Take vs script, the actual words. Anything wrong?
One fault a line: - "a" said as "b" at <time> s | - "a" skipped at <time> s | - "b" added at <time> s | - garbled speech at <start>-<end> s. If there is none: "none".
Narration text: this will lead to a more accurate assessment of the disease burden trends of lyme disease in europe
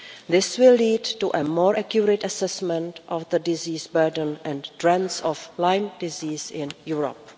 - "and" added at 4.4 s